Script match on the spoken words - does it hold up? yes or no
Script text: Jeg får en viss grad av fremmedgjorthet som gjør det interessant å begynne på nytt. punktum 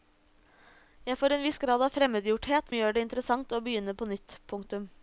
no